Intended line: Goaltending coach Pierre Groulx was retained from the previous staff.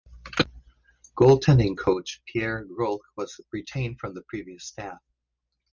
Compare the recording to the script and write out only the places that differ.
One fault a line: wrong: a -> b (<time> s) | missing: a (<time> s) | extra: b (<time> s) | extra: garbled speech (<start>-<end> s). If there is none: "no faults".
no faults